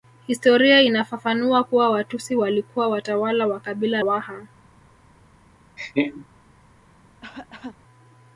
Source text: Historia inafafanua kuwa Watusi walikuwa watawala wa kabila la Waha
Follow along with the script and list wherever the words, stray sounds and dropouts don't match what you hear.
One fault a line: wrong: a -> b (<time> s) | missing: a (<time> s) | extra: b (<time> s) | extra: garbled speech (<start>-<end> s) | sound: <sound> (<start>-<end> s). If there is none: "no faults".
missing: la (4.0 s)
sound: laugh (5.8-6.3 s)
sound: cough (7.2-7.8 s)